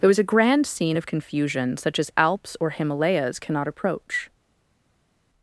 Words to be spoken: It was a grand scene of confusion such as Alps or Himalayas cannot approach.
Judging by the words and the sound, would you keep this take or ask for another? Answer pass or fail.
fail